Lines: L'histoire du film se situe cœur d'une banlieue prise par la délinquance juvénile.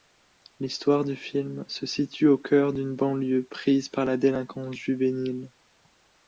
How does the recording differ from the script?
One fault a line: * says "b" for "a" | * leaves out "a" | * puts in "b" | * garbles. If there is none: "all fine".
* puts in "au"